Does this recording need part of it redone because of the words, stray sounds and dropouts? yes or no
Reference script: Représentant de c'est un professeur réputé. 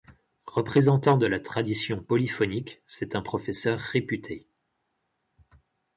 yes